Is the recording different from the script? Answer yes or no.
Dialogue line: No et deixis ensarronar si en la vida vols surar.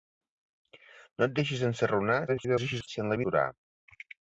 yes